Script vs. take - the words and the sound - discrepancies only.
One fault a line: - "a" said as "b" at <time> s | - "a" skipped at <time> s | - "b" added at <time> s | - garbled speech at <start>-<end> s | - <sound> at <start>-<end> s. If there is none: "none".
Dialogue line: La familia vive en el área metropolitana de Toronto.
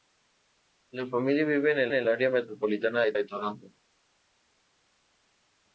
- "el" added at 1.9 s
- "de" added at 3.1 s